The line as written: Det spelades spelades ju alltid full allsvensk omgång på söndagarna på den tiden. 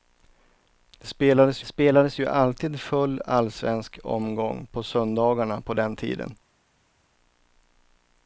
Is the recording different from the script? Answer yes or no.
no